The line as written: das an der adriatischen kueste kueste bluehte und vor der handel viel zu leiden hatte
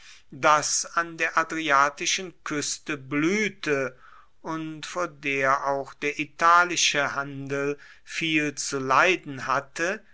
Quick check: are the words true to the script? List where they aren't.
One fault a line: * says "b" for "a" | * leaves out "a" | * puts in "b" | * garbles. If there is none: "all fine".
* leaves out "kueste"
* puts in "auch der italische"